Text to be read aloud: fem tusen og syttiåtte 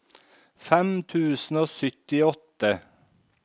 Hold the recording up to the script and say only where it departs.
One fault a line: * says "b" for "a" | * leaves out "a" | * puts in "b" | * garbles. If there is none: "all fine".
all fine